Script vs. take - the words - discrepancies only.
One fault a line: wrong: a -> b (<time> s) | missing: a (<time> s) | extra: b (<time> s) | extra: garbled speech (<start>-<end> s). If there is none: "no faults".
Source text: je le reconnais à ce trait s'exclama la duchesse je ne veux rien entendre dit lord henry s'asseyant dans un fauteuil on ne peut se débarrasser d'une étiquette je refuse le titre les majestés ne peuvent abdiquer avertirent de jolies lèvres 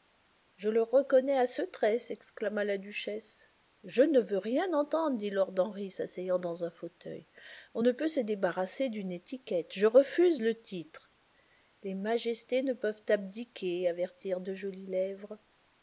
no faults